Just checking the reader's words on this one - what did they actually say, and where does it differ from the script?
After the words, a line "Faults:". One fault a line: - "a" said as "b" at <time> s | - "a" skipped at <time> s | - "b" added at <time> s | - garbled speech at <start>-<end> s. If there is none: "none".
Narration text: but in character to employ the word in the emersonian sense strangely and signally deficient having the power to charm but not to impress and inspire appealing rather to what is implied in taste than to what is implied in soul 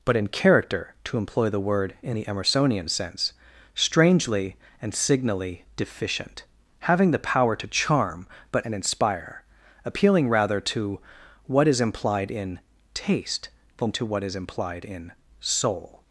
but in character to employ the word in the emersonian sense strangely and signally deficient having the power to charm but and inspire appealing rather to what is implied in taste than to what is implied in soul
Faults:
- "not to impress" skipped at 8.7 s